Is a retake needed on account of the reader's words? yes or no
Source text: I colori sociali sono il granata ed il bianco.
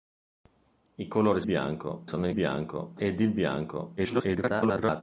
yes